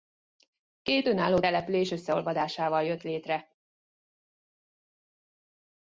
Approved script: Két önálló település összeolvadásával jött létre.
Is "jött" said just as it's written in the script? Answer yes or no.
yes